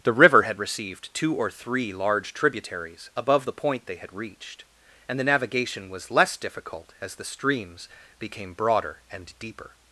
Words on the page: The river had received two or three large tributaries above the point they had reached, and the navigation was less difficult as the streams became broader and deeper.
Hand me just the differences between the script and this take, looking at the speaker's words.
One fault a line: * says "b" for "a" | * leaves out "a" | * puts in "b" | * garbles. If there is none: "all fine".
all fine